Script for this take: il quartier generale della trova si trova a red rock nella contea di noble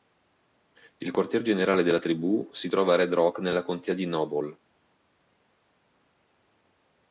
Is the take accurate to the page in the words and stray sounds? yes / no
no